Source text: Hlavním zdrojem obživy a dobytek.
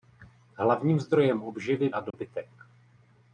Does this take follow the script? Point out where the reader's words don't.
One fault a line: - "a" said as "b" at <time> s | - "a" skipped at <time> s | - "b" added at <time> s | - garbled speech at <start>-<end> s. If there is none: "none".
none